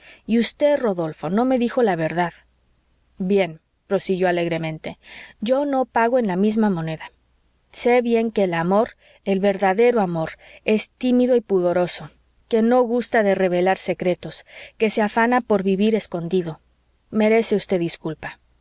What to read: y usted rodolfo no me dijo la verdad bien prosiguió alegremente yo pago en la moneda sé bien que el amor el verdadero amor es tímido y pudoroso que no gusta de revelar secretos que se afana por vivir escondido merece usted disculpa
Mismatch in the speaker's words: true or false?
true